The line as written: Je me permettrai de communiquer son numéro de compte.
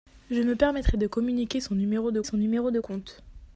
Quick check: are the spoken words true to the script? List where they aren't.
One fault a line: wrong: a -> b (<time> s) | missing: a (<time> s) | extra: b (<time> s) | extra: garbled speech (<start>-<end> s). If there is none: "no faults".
extra: son numéro de (2.2 s)